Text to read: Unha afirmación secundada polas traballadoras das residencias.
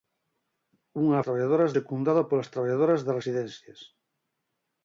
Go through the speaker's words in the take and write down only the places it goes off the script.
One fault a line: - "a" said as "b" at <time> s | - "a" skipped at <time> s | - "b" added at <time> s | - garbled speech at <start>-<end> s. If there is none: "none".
- "afirmación" said as "traballadoras" at 1.2 s